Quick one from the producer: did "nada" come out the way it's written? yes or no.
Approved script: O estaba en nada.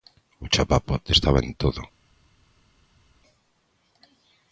no